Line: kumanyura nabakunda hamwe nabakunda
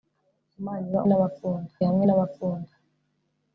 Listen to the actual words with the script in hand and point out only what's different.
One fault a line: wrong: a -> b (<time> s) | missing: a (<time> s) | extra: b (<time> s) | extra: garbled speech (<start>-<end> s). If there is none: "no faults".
no faults